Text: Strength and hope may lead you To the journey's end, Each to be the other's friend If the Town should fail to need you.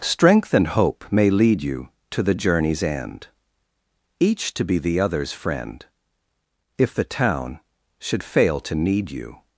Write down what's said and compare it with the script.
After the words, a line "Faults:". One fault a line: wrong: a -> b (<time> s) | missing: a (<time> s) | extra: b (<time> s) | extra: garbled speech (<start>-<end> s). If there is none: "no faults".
Strength and hope may lead you To the journey's end, Each to be the other's friend If the Town should fail to need you.
Faults:
no faults